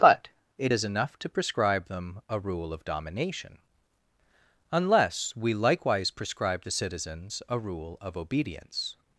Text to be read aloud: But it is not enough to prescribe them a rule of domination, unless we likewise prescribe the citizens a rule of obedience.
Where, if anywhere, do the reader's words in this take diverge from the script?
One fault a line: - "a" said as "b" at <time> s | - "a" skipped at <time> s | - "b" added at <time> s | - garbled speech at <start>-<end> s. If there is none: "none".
- "not" skipped at 0.9 s